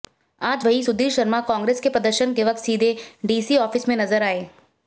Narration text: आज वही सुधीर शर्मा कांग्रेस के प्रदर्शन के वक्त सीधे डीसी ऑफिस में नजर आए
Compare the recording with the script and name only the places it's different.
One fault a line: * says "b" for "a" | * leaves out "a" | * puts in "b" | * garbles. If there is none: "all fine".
all fine